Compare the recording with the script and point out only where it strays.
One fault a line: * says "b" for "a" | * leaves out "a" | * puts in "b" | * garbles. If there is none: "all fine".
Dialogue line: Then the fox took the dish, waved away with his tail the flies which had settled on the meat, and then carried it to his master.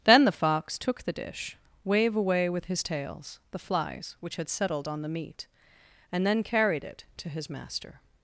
* says "wave" for "waved"
* says "tails" for "tail"